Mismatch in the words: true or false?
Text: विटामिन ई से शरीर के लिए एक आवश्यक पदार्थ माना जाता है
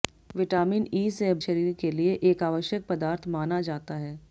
false